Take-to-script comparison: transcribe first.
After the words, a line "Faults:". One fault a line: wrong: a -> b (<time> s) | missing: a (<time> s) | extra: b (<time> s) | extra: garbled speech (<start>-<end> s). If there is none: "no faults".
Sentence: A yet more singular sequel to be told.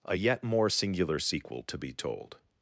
A yet more singular sequel to be told.
Faults:
no faults